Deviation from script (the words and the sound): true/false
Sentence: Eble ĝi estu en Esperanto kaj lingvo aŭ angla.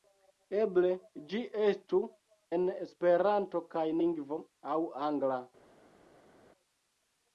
false